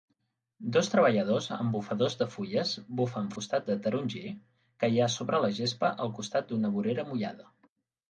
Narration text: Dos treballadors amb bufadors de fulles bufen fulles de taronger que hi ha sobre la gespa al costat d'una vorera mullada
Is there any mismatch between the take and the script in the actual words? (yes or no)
yes